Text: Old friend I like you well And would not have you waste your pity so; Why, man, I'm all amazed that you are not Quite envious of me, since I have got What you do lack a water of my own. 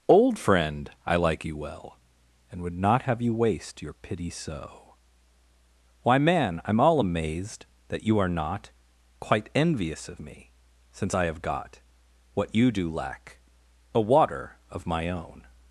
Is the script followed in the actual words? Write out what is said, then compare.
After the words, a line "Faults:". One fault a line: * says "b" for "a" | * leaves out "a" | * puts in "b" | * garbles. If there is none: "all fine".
Old friend I like you well And would not have you waste your pity so; Why, man, I'm all amazed that you are not Quite envious of me, since I have got What you do lack a water of my own.
Faults:
all fine